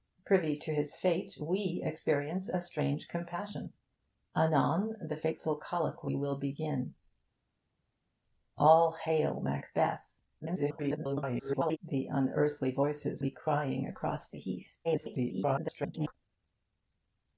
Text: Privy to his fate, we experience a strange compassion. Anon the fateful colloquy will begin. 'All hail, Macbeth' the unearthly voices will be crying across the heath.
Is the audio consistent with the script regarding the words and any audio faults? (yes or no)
no